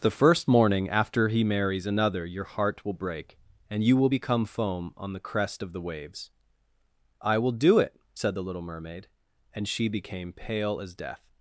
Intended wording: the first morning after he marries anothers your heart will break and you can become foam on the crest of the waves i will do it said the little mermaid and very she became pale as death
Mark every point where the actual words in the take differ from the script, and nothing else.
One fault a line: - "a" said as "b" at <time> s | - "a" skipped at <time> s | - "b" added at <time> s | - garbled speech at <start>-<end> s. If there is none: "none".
- "anothers" said as "another" at 1.9 s
- "can" said as "will" at 4.0 s
- "very" skipped at 9.7 s